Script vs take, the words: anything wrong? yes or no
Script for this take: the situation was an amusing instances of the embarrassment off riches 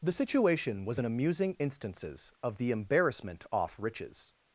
no